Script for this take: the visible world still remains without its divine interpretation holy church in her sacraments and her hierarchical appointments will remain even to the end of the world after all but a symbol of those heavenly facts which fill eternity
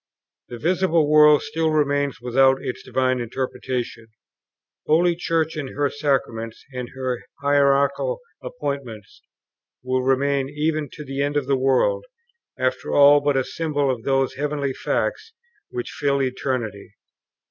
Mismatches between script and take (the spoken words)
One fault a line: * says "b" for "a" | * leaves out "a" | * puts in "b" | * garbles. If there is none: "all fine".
all fine